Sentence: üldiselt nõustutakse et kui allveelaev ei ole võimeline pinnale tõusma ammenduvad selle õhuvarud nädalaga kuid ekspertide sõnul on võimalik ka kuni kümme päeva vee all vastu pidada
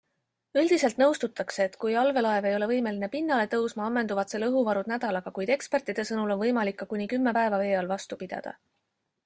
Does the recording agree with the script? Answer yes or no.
yes